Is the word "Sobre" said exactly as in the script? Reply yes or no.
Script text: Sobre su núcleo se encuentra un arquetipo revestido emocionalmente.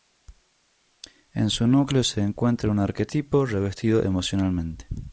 no